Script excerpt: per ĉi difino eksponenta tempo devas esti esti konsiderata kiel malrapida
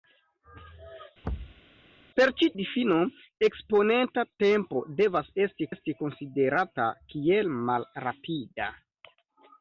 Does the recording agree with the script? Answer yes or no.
yes